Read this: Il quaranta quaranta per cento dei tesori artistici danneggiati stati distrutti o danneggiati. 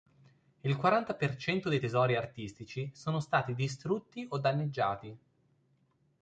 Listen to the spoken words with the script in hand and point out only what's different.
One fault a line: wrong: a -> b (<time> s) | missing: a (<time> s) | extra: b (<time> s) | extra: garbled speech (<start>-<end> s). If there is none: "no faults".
missing: quaranta (1.1 s)
wrong: danneggiati -> sono (2.9 s)